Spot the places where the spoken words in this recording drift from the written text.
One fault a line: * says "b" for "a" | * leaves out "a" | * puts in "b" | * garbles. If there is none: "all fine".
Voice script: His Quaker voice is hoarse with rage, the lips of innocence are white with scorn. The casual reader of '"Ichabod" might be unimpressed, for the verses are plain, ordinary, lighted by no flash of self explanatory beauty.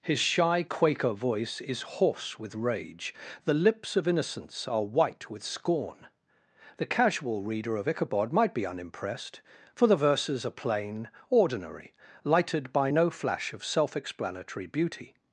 * puts in "shy"